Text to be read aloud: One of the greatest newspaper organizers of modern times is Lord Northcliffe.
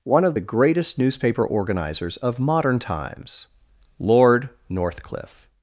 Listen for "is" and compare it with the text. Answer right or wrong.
wrong